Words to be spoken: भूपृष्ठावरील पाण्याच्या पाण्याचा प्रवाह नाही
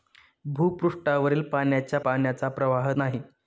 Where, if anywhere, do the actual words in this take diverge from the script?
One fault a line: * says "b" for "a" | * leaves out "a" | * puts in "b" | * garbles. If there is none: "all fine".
all fine